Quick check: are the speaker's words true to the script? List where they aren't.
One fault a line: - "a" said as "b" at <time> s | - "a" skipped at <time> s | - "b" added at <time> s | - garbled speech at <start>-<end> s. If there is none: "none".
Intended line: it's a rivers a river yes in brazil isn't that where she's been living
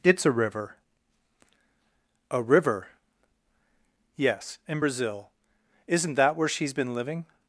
- "rivers" said as "river" at 0.3 s